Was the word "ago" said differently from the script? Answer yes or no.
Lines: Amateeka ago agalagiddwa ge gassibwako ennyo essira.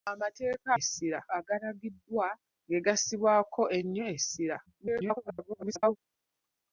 yes